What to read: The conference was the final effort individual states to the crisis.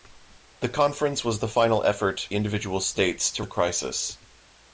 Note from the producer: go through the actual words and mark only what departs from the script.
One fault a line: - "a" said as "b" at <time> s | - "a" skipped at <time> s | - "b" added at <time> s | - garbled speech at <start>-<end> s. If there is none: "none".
none